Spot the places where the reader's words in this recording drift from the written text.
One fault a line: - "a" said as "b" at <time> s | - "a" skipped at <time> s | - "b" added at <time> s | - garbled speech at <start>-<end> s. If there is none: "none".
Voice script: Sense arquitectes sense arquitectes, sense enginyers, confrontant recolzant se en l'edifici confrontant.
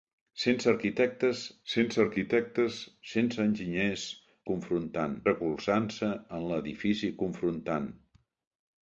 none